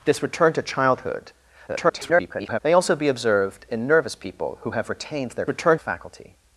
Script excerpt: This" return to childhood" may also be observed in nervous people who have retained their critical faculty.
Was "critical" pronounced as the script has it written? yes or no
no